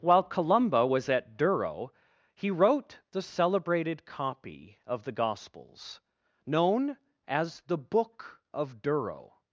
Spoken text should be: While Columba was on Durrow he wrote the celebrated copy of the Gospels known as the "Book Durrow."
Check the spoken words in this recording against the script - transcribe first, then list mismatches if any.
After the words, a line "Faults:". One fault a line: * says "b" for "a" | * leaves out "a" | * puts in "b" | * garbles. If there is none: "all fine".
While Columba was at Durrow he wrote the celebrated copy of the Gospels known as the "Book of Durrow."
Faults:
* says "at" for "on"
* puts in "of"